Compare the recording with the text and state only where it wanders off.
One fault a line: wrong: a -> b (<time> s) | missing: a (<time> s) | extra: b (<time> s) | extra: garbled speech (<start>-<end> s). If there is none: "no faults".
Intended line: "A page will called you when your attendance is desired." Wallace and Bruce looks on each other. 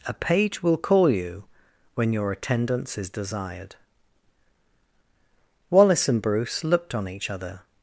wrong: called -> call (0.8 s)
wrong: looks -> looked (6.6 s)